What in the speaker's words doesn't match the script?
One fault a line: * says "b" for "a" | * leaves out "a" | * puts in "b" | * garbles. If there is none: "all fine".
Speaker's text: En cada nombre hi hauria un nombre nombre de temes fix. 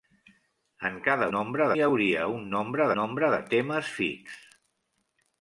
all fine